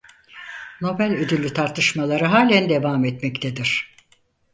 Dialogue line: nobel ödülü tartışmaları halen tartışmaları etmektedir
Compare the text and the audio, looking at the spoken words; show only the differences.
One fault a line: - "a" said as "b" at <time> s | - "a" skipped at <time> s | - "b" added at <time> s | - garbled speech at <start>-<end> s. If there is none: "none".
- "tartışmaları" said as "devam" at 2.7 s